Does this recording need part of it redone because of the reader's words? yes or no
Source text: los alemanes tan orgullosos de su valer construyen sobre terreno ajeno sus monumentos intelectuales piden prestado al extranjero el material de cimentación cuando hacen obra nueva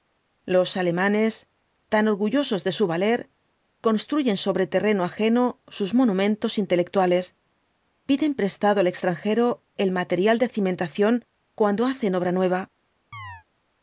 no